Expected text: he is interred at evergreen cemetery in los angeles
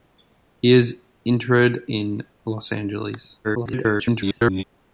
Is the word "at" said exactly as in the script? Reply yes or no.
no